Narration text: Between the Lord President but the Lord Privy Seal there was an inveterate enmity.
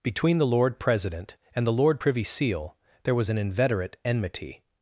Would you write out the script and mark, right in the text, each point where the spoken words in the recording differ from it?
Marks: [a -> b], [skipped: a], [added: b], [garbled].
Between the Lord President [but -> and] the Lord Privy Seal there was an inveterate enmity.